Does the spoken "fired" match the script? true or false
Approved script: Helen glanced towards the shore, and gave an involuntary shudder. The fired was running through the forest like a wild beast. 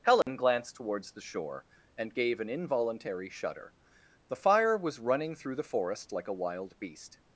false